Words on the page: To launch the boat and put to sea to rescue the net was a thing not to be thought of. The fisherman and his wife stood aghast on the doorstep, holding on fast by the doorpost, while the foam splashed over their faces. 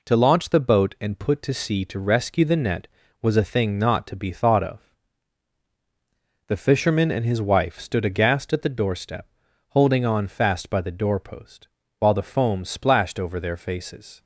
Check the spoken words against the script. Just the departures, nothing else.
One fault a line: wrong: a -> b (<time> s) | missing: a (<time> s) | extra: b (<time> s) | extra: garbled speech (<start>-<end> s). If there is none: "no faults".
wrong: on -> at (8.5 s)